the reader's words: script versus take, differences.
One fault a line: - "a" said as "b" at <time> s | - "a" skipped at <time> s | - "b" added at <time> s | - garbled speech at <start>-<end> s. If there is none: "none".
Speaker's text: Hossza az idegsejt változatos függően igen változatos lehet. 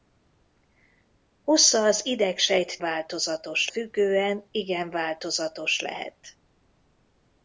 none